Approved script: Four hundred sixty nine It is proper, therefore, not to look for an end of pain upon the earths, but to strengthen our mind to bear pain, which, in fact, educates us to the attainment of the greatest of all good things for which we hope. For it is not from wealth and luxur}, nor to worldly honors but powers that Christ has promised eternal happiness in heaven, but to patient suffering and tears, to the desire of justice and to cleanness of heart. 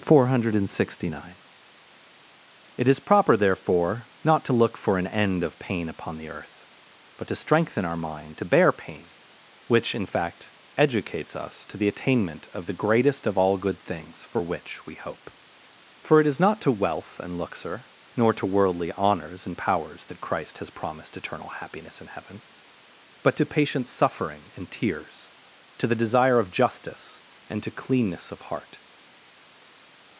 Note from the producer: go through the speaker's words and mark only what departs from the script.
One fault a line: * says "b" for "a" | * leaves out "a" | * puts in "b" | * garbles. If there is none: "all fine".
* says "earth" for "earths"
* says "to" for "from"
* says "and" for "but"